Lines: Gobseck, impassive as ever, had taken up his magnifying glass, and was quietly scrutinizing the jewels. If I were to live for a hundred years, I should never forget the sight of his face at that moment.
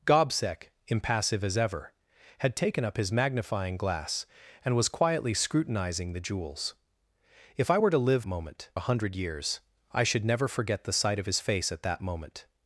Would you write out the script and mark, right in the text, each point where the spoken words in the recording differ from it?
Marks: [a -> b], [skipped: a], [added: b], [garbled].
Gobseck, impassive as ever, had taken up his magnifying glass, and was quietly scrutinizing the jewels. If I were to live [for -> moment] a hundred years, I should never forget the sight of his face at that moment.